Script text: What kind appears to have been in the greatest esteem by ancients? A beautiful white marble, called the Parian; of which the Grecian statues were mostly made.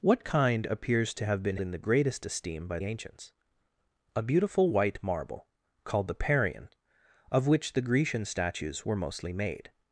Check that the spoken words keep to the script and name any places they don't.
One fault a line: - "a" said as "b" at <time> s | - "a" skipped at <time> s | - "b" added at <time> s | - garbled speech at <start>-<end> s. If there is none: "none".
none